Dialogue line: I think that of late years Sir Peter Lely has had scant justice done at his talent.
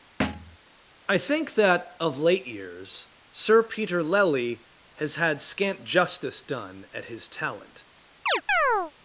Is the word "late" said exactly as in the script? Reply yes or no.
yes